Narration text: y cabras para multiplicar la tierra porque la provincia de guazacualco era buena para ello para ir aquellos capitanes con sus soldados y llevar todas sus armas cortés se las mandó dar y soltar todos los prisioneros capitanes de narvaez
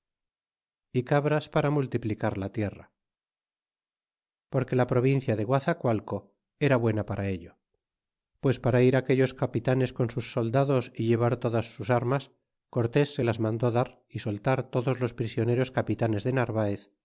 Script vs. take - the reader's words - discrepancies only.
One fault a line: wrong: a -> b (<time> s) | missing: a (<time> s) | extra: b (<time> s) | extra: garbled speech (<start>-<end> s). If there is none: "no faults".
extra: pues (8.4 s)